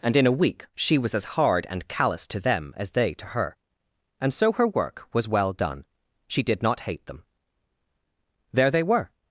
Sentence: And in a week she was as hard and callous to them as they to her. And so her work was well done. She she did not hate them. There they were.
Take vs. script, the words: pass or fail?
fail